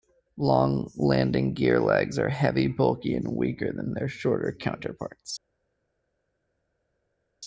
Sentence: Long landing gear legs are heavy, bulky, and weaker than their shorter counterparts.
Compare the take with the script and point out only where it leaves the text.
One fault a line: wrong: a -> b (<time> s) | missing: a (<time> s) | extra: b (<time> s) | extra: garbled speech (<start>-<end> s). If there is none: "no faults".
no faults